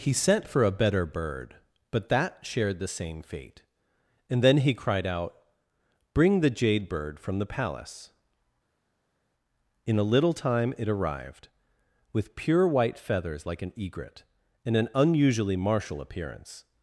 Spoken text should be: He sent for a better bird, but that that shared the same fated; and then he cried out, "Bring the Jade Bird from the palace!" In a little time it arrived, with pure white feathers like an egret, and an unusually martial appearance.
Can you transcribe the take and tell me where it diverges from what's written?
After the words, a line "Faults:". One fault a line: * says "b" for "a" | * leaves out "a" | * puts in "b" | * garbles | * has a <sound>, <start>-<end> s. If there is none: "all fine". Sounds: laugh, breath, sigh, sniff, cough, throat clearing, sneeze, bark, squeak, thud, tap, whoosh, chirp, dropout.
He sent for a better bird, but that shared the same fate; and then he cried out, "Bring the Jade Bird from the palace!" In a little time it arrived, with pure white feathers like an egret, and an unusually martial appearance.
Faults:
* leaves out "that"
* says "fate" for "fated"